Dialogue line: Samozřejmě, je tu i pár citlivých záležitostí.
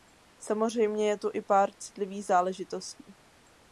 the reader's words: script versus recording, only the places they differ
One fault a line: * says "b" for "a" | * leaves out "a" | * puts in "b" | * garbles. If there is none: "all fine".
all fine